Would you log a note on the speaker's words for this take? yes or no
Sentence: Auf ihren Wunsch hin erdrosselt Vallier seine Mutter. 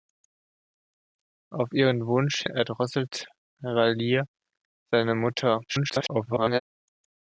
yes